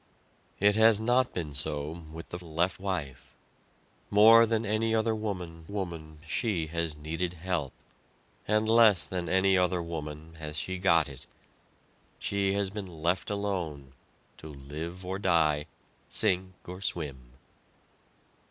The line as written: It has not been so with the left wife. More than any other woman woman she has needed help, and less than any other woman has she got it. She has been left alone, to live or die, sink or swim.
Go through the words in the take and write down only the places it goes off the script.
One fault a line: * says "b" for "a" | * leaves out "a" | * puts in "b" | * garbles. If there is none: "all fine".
all fine